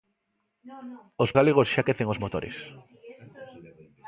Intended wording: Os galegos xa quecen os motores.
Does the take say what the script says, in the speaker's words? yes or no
yes